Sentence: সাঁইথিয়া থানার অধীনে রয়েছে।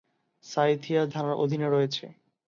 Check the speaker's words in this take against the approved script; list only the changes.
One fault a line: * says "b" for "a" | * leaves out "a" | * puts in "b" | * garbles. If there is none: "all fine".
all fine